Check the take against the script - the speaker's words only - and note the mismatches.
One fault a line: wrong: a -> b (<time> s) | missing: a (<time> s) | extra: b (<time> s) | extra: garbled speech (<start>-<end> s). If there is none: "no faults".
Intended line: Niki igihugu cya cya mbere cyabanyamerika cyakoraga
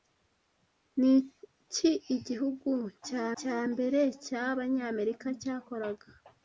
no faults